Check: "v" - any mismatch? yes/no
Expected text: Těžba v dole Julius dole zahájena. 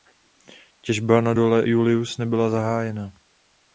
yes